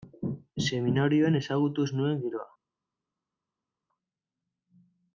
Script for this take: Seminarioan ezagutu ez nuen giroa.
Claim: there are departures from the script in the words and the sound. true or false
false